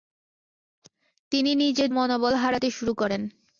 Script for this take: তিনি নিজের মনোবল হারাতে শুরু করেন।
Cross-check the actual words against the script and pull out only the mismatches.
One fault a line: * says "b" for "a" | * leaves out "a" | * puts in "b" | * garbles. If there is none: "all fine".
all fine